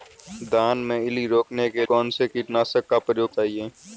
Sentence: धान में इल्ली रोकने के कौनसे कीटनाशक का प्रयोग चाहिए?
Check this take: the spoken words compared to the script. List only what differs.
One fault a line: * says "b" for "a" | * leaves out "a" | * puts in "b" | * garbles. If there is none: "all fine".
all fine